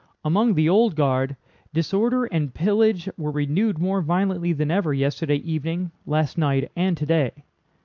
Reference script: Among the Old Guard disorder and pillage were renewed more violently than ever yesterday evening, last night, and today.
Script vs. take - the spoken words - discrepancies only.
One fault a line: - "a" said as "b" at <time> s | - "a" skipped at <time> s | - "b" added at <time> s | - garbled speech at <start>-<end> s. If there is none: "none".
none